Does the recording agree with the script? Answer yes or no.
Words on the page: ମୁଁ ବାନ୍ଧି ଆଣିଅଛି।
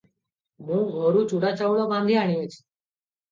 no